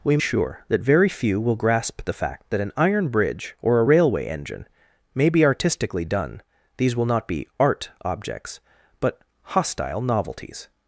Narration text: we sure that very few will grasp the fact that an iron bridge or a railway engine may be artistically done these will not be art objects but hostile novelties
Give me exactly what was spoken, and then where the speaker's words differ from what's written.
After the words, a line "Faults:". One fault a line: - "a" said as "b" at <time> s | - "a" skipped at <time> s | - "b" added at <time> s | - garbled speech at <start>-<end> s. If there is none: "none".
we sure that very few will grasp the fact that an iron bridge or a railway engine may be artistically done these will not be art objects but hostile novelties
Faults:
none